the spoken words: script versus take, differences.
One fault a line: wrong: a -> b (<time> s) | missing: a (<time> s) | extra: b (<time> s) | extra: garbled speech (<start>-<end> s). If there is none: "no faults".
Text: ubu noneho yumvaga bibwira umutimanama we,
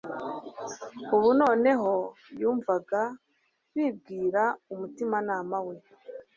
no faults